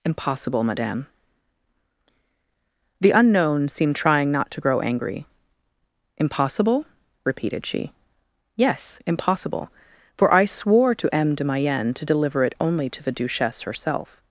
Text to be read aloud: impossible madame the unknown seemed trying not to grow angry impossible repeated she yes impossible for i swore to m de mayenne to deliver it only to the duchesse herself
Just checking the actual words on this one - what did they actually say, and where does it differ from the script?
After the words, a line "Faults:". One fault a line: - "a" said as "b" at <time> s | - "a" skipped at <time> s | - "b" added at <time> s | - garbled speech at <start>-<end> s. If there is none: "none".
impossible madame the unknown seemed trying not to grow angry impossible repeated she yes impossible for i swore to m de mayenne to deliver it only to the duchesse herself
Faults:
none